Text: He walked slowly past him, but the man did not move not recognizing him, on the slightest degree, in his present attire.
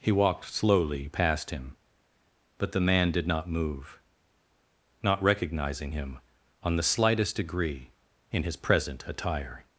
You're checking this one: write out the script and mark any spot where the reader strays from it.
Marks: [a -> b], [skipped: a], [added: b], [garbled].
He walked slowly past him, but the man did not move not recognizing him, on the slightest degree, in his present attire.